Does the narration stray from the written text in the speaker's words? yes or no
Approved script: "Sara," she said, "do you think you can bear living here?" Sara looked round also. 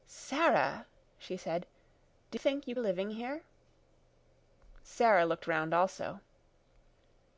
yes